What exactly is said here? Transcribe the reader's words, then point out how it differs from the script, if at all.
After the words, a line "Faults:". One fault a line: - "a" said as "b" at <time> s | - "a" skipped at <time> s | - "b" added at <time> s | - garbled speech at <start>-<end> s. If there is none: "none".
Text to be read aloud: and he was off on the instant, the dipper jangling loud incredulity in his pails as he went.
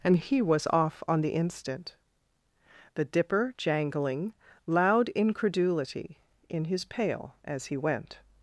and he was off on the instant, the dipper jangling loud incredulity in his pail as he went.
Faults:
- "pails" said as "pail" at 6.8 s